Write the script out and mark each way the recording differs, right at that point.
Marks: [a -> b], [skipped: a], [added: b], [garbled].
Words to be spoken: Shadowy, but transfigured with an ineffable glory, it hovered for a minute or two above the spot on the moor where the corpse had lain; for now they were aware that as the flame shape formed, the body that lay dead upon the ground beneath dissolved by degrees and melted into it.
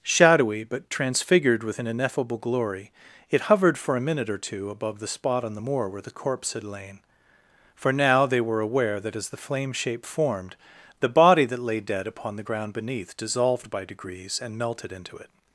Shadowy, but transfigured with an ineffable glory, it hovered for a minute or two above the spot on the moor where the corpse had lain; for now they were aware that as the flame shape formed, the body that lay dead upon the ground beneath dissolved by degrees and melted into it.